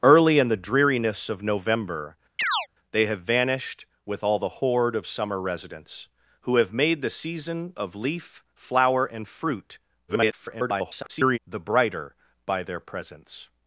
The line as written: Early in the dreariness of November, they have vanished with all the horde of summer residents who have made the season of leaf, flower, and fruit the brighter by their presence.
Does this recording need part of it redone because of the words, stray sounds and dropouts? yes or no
yes